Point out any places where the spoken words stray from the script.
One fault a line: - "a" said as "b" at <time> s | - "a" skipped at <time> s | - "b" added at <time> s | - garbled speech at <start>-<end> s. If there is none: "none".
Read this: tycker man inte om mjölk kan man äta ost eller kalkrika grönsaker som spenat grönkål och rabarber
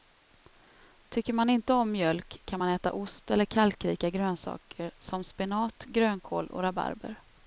none